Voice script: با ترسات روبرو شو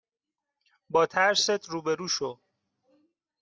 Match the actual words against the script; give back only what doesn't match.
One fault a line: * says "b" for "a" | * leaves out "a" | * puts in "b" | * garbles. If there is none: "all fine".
all fine